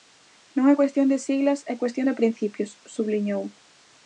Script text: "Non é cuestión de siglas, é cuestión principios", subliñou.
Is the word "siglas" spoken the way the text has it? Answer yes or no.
yes